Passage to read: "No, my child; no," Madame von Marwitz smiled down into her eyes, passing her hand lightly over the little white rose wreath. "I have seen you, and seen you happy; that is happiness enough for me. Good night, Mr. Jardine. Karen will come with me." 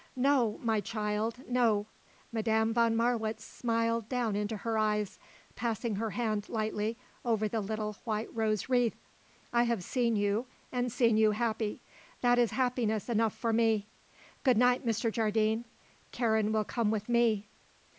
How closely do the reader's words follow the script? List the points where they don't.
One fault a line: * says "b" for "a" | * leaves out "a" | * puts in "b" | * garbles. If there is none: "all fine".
all fine